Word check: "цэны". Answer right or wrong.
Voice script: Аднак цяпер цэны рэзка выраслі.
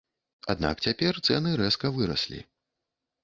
right